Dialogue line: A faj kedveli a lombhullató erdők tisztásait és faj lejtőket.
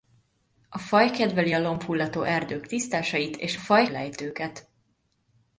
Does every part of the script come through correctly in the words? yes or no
yes